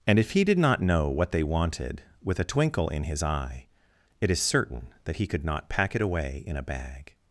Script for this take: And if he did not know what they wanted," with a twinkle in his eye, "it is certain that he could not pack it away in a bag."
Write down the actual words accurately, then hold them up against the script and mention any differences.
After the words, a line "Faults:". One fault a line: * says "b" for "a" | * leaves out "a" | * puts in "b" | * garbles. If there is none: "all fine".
And if he did not know what they wanted," with a twinkle in his eye, "it is certain that he could not pack it away in a bag."
Faults:
all fine